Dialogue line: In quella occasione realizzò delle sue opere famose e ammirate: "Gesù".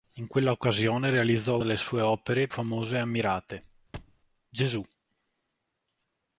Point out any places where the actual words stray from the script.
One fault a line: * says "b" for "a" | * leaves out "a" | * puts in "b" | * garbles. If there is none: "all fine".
all fine